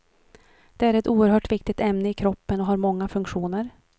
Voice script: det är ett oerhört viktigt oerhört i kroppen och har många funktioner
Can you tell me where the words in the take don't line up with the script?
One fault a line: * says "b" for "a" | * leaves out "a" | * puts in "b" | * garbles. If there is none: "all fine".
* says "ämne" for "oerhört"